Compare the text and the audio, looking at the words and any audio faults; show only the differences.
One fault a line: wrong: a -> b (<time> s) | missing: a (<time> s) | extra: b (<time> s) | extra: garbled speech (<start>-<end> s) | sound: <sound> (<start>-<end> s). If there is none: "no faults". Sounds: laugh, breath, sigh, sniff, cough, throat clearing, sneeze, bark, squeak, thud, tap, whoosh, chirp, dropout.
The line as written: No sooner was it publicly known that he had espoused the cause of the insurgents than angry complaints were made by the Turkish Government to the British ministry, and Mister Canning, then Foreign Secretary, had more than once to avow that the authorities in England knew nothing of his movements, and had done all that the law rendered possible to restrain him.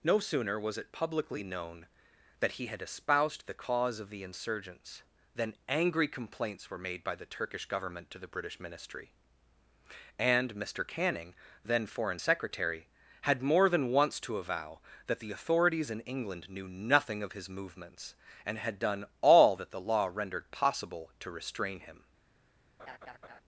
sound: laugh (22.8-23.4 s)